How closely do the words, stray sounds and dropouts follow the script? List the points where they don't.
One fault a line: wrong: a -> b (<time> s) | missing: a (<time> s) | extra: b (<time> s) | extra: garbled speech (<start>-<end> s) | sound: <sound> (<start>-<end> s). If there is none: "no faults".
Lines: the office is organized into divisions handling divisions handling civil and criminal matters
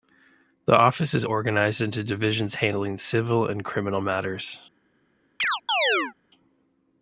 missing: divisions handling (3.0 s)
sound: chirp (5.4-6.1 s)